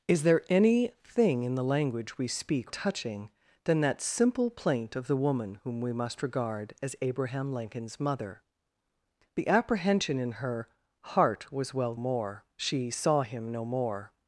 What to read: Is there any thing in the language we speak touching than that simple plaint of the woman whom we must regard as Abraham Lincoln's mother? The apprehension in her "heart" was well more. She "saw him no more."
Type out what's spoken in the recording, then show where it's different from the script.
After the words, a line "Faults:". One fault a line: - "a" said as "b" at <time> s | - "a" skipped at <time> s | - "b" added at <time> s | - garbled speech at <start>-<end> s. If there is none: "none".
Is there any thing in the language we speak touching than that simple plaint of the woman whom we must regard as Abraham Lincoln's mother? The apprehension in her "heart" was well more. She "saw him no more."
Faults:
none